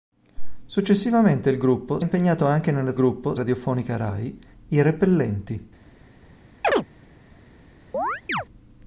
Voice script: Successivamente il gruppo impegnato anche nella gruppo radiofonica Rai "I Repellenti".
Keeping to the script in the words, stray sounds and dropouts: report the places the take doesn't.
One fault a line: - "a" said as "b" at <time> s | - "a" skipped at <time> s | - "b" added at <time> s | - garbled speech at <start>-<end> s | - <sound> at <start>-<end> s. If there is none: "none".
- chirp at 6.6-6.9 s
- chirp at 7.9-8.5 s